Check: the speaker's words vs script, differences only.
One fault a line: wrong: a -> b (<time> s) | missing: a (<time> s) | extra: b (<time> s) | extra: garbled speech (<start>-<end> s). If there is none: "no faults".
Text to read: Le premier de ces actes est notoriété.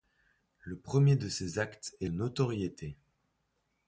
no faults